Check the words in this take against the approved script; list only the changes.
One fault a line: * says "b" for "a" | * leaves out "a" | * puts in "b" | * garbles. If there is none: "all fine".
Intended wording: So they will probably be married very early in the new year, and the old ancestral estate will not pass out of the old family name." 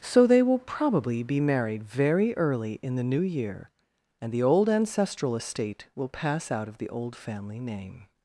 * leaves out "not"